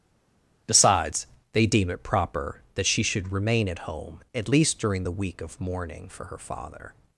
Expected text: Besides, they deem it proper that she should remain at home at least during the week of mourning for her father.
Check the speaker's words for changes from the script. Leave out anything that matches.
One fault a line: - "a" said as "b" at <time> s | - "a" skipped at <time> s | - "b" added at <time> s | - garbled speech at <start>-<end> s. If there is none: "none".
none